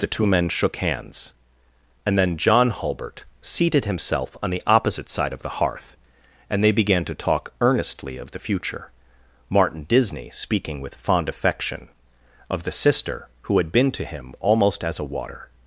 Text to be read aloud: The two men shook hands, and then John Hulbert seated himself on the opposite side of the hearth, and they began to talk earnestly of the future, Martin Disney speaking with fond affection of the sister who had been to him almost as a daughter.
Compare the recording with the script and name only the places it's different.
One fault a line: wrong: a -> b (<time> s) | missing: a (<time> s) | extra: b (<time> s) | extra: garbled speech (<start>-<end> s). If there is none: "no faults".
wrong: daughter -> water (15.1 s)